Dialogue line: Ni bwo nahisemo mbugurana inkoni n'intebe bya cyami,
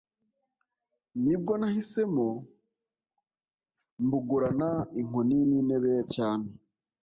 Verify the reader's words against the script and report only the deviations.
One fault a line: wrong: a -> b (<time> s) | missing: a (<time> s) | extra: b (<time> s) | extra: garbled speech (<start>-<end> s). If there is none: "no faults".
missing: bya (5.9 s)